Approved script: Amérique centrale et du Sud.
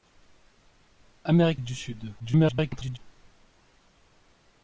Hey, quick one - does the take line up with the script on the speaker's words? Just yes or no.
no